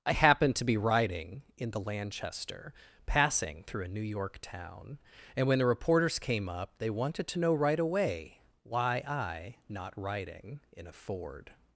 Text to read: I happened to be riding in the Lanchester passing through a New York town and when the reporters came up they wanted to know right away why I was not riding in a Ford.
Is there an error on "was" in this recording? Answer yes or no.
yes